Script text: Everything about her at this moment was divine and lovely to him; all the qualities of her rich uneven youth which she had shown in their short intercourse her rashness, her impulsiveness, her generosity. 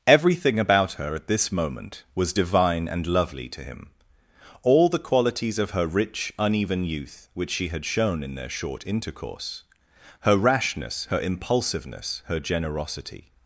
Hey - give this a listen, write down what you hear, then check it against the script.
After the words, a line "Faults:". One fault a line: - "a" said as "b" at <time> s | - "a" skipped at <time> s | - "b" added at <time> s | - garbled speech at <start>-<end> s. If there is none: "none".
Everything about her at this moment was divine and lovely to him; all the qualities of her rich uneven youth which she had shown in their short intercourse her rashness, her impulsiveness, her generosity.
Faults:
none